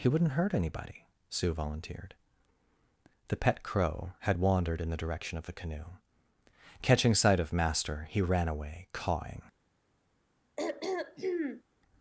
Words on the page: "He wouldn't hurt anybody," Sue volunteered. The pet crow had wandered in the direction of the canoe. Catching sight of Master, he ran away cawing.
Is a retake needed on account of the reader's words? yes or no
no